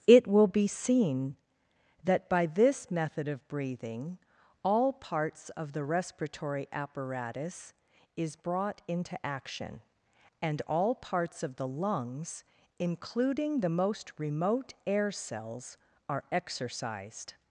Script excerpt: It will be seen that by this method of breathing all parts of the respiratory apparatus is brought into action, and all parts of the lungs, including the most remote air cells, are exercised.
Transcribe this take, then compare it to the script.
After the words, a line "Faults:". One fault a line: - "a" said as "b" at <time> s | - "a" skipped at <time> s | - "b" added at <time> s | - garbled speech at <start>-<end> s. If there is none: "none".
It will be seen that by this method of breathing all parts of the respiratory apparatus is brought into action, and all parts of the lungs, including the most remote air cells, are exercised.
Faults:
none